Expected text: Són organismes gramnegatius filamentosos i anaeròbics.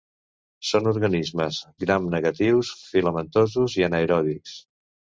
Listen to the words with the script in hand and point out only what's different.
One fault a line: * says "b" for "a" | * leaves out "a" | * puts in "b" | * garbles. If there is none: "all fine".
all fine